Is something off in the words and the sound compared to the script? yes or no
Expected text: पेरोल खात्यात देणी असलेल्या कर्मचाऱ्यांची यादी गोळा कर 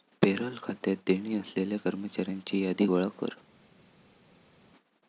no